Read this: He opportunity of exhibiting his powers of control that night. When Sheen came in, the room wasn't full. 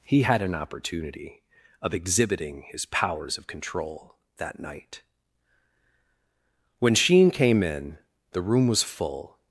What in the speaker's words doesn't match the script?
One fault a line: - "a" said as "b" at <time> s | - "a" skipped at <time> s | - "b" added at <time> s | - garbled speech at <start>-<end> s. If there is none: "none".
- "had an" added at 0.2 s
- "wasn't" said as "was" at 8.7 s